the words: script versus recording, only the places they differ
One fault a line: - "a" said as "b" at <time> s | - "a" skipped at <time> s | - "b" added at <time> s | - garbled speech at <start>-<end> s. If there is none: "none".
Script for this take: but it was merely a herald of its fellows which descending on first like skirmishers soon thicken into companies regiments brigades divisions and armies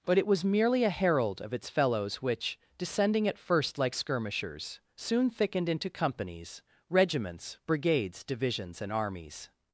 - "on" said as "at" at 3.3 s
- "thicken" said as "thickened" at 5.3 s